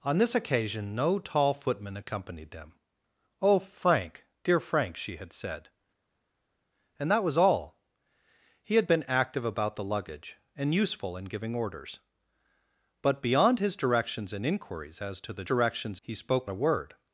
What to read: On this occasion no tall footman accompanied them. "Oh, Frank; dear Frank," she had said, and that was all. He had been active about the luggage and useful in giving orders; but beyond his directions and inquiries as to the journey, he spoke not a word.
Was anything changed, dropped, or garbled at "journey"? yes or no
yes